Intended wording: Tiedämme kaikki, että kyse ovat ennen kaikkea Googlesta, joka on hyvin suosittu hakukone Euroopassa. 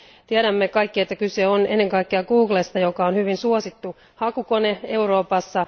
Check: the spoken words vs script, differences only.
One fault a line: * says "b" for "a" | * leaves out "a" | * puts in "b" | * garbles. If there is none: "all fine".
* says "on" for "ovat"